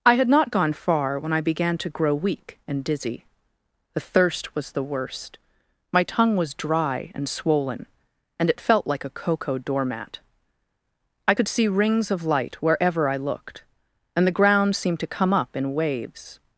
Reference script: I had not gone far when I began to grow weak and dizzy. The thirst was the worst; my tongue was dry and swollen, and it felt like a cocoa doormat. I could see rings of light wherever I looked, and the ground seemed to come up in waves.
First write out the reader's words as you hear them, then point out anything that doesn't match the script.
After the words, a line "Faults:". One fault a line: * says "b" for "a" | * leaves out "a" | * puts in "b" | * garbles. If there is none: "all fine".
I had not gone far when I began to grow weak and dizzy. The thirst was the worst; my tongue was dry and swollen, and it felt like a cocoa doormat. I could see rings of light wherever I looked, and the ground seemed to come up in waves.
Faults:
all fine